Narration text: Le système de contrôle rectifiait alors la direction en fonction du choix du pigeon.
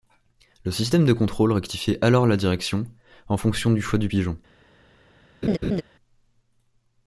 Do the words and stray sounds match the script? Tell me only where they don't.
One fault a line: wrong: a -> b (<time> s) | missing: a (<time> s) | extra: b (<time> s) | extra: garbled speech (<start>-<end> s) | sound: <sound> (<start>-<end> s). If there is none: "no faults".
sound: laugh (5.4-5.8 s)